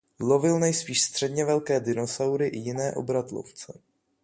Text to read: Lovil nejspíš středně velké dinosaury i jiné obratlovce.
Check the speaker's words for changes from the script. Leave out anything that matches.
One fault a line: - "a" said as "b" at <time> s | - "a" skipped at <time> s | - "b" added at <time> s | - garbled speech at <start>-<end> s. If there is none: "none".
none